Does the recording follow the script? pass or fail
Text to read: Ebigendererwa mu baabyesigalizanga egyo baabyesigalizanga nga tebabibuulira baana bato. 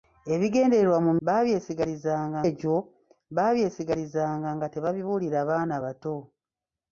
pass